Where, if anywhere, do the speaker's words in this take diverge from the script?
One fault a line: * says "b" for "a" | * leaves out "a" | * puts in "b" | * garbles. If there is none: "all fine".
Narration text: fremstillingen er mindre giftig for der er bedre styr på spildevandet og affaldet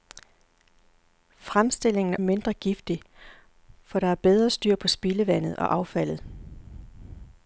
all fine